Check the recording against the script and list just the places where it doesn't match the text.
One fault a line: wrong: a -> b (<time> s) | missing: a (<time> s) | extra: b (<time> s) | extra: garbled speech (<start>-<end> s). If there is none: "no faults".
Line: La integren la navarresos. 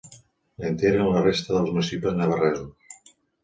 extra: resta dels municipis (1.3 s)